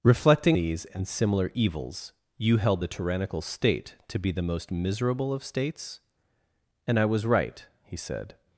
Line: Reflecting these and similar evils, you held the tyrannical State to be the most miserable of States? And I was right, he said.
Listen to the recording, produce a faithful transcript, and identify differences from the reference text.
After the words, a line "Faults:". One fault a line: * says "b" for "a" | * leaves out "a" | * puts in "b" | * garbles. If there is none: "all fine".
Reflecting these and similar evils, you held the tyrannical State to be the most miserable of States? And I was right, he said.
Faults:
all fine